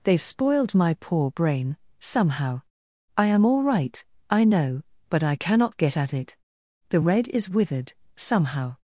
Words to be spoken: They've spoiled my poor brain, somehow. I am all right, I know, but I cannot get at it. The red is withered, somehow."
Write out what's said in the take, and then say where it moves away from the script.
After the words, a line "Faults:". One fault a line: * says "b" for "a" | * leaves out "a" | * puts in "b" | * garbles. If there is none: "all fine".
They've spoiled my poor brain, somehow. I am all right, I know, but I cannot get at it. The red is withered, somehow."
Faults:
all fine